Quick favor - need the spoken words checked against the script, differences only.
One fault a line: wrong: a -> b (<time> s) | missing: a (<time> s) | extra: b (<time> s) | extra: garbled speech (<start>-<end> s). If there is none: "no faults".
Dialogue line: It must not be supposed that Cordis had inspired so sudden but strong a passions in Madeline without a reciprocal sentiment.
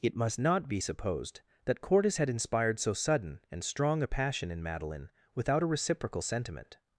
wrong: but -> and (3.5 s)
wrong: passions -> passion (4.0 s)